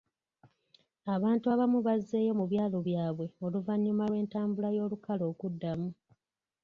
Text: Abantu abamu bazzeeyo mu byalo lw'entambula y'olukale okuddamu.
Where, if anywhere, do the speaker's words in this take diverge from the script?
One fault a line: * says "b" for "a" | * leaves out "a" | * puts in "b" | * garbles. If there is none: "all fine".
* puts in "byabwe oluvannyuma"